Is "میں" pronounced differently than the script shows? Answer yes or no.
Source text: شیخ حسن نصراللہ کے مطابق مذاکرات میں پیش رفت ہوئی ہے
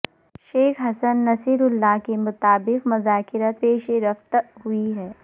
yes